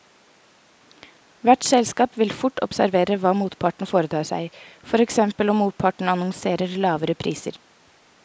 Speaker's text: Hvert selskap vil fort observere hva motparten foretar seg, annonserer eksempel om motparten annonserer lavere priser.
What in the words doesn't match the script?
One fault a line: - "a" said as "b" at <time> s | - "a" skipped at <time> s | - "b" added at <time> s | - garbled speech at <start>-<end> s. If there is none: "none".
- "annonserer" said as "for" at 4.9 s